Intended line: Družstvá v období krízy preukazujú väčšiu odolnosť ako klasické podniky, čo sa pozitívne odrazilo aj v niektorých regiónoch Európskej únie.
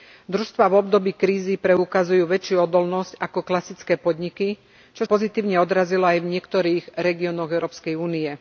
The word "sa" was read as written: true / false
false